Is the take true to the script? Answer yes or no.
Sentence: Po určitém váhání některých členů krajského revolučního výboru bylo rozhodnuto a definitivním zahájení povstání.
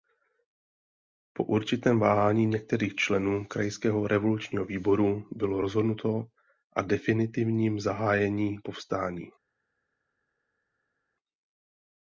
yes